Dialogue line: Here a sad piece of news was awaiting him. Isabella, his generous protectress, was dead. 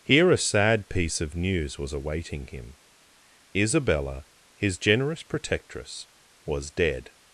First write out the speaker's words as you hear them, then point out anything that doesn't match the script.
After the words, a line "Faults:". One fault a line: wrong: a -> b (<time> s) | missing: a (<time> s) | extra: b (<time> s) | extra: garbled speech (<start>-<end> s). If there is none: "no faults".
Here a sad piece of news was awaiting him. Isabella, his generous protectress, was dead.
Faults:
no faults